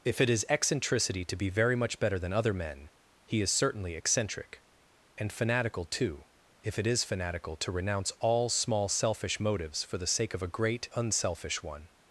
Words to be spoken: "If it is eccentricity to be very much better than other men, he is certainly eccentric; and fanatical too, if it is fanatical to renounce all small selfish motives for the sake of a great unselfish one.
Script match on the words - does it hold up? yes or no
yes